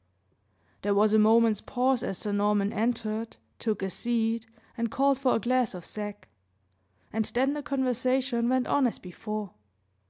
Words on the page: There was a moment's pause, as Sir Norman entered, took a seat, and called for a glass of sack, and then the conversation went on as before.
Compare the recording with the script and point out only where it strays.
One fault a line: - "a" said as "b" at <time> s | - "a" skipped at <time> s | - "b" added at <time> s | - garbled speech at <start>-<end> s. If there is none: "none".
none